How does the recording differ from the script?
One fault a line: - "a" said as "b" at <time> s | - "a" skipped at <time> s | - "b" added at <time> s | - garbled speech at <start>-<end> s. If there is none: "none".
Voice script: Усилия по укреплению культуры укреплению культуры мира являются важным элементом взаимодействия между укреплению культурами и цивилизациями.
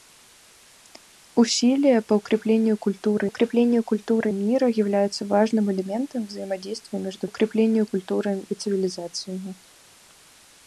none